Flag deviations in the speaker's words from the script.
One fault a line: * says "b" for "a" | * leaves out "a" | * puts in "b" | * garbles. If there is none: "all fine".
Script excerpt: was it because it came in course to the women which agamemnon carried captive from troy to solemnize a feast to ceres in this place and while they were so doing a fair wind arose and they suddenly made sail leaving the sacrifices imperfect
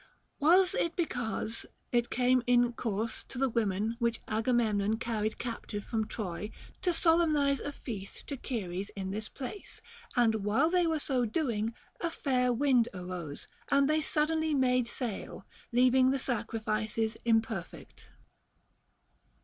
all fine